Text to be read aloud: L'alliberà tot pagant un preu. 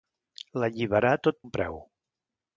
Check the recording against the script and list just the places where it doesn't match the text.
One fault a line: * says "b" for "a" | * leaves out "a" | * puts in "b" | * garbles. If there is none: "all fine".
* leaves out "pagant"